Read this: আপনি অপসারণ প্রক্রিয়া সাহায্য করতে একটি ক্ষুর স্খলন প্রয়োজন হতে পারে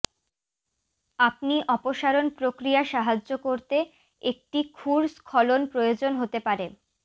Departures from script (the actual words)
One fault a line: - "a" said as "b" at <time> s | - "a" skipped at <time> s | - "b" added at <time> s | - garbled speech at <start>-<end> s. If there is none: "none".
none